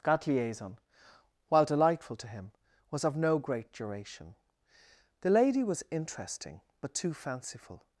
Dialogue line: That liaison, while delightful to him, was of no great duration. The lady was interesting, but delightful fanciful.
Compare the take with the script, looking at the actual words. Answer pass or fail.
fail